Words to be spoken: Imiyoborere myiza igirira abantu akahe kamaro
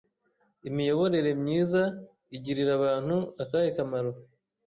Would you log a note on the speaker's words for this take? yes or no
no